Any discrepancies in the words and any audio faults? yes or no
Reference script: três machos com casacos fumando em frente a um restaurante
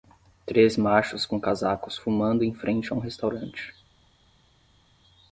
no